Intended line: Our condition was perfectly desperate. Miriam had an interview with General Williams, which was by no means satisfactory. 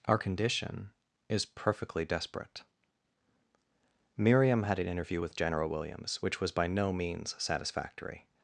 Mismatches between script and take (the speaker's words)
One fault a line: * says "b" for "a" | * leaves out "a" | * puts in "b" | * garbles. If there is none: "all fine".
* says "is" for "was"